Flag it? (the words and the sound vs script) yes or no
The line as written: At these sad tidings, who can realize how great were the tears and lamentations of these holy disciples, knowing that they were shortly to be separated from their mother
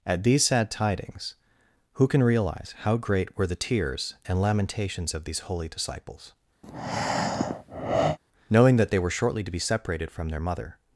yes